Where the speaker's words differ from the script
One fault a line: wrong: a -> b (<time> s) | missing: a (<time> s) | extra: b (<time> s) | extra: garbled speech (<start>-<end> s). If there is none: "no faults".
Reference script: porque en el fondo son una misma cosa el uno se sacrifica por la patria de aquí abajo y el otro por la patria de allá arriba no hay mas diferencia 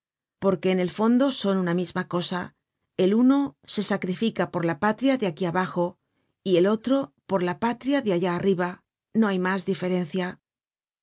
no faults